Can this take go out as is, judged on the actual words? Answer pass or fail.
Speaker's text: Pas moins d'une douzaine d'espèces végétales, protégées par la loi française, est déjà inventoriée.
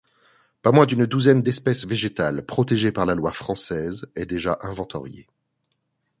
pass